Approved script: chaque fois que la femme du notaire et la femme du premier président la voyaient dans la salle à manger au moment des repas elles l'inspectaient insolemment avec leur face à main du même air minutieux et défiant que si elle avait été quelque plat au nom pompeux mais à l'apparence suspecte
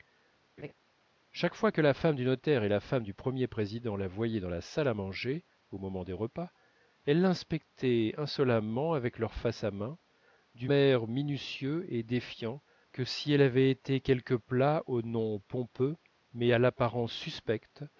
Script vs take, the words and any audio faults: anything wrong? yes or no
yes